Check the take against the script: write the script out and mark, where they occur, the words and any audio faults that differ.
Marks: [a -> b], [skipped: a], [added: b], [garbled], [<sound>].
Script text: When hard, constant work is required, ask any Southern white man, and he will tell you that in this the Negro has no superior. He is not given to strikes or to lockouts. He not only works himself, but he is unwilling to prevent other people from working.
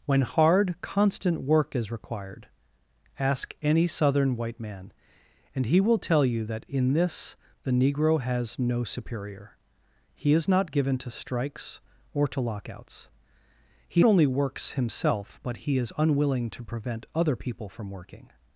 When hard, constant work is required, ask any Southern white man, and he will tell you that in this the Negro has no superior. He is not given to strikes or to lockouts. He [skipped: not] only works himself, but he is unwilling to prevent other people from working.